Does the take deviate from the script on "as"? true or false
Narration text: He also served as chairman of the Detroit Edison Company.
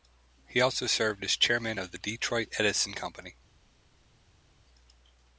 false